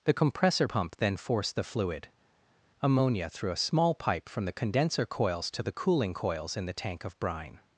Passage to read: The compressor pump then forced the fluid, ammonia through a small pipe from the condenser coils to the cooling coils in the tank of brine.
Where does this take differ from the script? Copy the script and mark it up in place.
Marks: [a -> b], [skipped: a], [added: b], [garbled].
The compressor pump then forced the fluid, ammonia through a small pipe from the condenser coils to the cooling coils in the tank of brine.